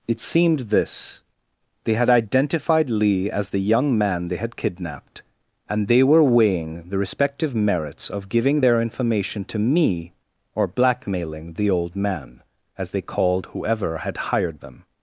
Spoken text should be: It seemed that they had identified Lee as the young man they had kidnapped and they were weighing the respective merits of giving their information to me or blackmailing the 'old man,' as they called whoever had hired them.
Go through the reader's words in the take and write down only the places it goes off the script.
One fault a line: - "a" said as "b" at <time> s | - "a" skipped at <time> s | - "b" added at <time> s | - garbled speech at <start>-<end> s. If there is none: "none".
- "that" said as "this" at 0.6 s